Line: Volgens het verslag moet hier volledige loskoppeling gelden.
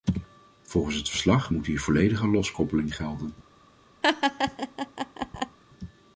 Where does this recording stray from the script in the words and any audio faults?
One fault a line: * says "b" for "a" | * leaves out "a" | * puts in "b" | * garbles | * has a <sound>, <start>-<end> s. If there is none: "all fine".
* has a laugh, 4.0-5.6 s